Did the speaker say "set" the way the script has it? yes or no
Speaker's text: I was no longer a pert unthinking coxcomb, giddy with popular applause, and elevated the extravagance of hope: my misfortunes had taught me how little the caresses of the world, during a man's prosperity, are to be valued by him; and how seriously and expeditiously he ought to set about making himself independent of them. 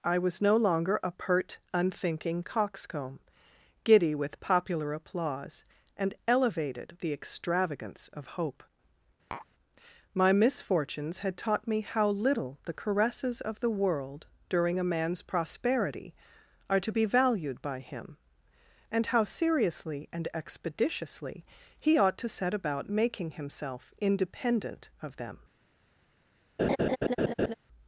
yes